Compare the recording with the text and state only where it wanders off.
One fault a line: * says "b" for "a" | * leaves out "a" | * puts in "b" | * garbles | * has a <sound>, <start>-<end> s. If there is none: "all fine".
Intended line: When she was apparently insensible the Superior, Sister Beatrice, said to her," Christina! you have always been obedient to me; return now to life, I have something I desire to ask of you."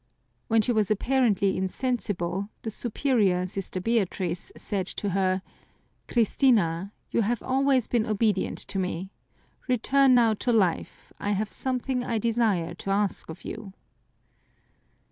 all fine